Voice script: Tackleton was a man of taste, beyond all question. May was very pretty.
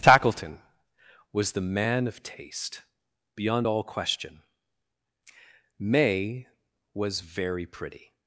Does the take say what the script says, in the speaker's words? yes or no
no